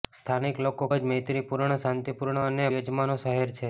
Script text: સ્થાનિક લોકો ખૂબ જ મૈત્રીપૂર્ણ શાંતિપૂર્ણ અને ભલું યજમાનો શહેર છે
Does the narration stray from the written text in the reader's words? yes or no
yes